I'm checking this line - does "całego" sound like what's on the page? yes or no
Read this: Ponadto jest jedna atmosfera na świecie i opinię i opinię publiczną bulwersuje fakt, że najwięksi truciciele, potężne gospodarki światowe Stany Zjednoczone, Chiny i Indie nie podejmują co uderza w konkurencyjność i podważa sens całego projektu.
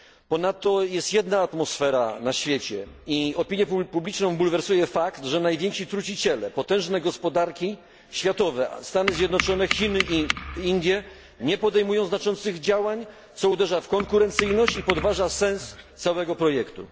yes